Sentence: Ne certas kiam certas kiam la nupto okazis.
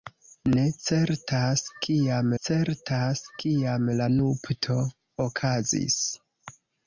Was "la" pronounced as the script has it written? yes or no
yes